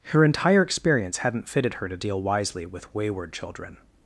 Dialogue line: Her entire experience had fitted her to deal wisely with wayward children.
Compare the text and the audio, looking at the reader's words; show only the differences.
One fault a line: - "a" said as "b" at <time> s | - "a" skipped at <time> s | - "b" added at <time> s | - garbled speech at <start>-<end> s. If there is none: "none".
- "had" said as "hadn't" at 1.2 s